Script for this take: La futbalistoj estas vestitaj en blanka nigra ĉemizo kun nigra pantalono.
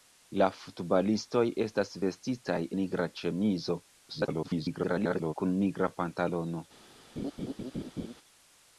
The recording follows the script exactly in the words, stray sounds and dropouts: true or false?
false